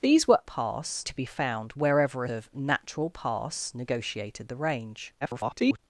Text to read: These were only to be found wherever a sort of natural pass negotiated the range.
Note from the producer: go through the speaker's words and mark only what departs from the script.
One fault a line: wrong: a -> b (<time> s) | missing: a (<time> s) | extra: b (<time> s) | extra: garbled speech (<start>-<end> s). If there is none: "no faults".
wrong: only -> pass (0.4 s)
missing: sort (2.3 s)
extra: garbled speech (5.2-5.8 s)